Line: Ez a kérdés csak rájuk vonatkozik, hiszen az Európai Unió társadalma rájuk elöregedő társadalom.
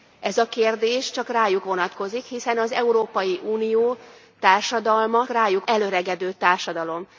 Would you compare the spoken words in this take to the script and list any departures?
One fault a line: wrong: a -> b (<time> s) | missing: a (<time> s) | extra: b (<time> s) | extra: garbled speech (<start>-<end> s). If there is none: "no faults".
no faults